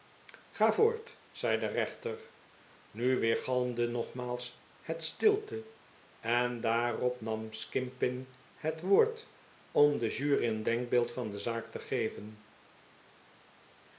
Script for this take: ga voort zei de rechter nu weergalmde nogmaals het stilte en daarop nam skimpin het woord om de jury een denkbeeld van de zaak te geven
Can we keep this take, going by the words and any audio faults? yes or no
yes